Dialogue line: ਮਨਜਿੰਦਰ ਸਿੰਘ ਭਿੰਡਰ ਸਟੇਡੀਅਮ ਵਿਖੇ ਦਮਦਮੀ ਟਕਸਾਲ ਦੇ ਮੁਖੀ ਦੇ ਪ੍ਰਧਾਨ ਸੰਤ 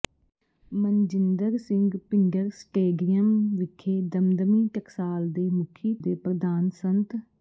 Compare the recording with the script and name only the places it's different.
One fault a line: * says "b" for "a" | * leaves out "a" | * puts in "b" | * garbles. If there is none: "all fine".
all fine